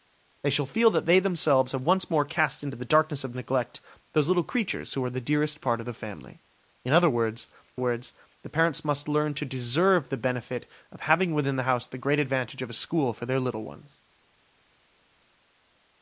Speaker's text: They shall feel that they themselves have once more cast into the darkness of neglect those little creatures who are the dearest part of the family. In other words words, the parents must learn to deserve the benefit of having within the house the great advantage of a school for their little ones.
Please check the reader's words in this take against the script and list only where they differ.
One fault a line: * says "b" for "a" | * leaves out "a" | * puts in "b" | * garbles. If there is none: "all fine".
all fine